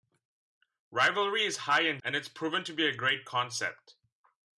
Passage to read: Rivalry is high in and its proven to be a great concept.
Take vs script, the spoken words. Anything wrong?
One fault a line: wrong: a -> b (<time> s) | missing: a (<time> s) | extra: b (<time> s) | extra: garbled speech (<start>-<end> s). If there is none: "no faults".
no faults